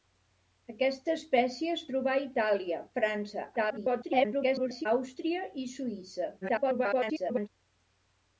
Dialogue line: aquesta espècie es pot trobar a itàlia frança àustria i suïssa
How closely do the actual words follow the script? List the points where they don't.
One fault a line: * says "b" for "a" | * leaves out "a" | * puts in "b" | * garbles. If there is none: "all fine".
* leaves out "pot"
* garbles
* garbles